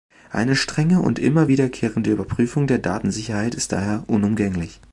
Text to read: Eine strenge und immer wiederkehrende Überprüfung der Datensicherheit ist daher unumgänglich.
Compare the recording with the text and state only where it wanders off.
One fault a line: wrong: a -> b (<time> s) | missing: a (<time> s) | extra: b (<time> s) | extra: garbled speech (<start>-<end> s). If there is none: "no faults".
no faults